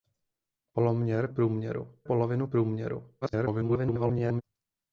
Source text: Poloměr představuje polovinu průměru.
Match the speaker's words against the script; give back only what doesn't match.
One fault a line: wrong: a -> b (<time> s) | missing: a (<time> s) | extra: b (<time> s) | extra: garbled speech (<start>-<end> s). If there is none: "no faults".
wrong: představuje -> průměru (1.3 s)
extra: garbled speech (3.2-4.4 s)